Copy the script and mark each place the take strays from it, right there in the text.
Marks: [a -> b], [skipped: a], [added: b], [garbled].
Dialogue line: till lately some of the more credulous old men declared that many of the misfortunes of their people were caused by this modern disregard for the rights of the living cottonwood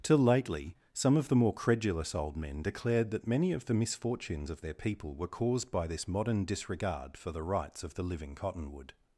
till lately some of the more credulous old men declared that many of the misfortunes of their people were caused by this modern disregard for the rights of the living cottonwood